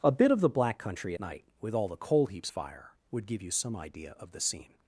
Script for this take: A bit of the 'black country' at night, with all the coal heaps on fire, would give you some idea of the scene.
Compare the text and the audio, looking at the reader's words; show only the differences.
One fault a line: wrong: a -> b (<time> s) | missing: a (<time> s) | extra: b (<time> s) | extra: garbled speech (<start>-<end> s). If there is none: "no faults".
missing: at (1.1 s)
missing: on (2.5 s)